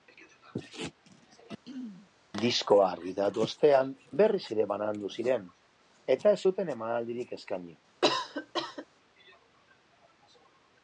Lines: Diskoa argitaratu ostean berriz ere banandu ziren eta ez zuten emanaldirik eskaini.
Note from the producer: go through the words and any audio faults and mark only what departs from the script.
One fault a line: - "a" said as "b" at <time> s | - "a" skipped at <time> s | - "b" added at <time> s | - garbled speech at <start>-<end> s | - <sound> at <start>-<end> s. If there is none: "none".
- throat clearing at 1.6-2.1 s
- cough at 8.0-8.9 s